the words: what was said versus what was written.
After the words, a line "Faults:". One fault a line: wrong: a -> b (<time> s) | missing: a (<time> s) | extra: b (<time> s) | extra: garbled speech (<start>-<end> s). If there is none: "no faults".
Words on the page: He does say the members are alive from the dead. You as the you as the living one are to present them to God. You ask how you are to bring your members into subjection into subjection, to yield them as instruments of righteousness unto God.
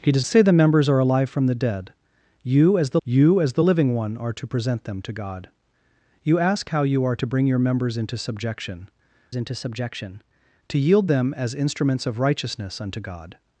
He does say the members are alive from the dead. You as the you as the living one are to present them to God. You ask how you are to bring your members into subjection into subjection, to yield them as instruments of righteousness unto God.
Faults:
no faults